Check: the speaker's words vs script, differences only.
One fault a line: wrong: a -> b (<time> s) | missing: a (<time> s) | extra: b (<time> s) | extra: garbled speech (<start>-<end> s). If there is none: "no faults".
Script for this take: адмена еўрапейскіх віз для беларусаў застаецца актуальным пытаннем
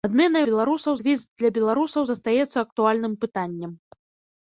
wrong: еўрапейскіх -> беларусаў (0.5 s)